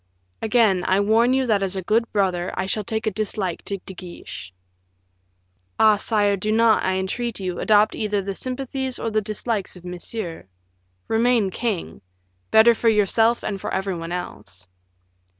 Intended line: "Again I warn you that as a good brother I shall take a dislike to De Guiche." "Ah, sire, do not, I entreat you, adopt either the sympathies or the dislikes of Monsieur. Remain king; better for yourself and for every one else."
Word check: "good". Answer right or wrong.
right